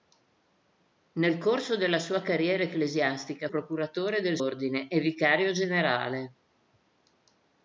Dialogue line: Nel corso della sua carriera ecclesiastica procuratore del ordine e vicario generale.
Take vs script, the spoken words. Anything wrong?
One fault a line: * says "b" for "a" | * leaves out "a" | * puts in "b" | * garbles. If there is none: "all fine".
all fine